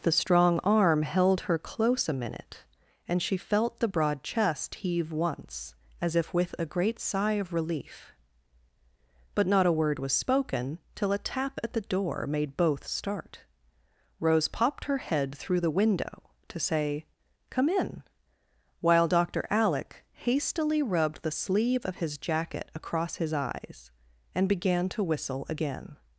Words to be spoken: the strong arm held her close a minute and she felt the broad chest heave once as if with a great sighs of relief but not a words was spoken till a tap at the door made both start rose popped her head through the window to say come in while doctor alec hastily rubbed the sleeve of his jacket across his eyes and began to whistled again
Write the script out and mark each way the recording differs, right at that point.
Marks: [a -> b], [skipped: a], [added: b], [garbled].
the strong arm held her close a minute and she felt the broad chest heave once as if with a great [sighs -> sigh] of relief but not a [words -> word] was spoken till a tap at the door made both start rose popped her head through the window to say come in while doctor alec hastily rubbed the sleeve of his jacket across his eyes and began to [whistled -> whistle] again